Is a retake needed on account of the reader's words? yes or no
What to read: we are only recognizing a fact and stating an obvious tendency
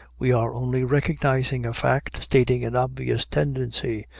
yes